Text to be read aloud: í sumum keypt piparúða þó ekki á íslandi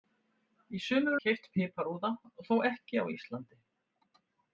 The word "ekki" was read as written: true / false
true